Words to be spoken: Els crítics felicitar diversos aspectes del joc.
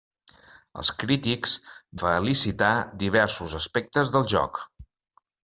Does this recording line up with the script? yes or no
yes